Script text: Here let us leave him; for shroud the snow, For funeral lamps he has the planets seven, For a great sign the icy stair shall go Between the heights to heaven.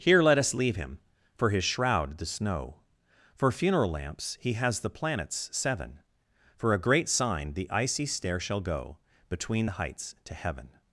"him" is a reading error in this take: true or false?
false